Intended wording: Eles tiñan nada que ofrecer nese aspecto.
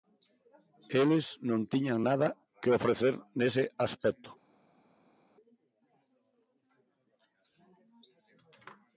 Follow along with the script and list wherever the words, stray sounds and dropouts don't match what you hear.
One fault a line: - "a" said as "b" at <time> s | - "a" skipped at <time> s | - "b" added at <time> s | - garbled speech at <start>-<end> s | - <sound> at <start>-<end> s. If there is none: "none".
- "non" added at 1.5 s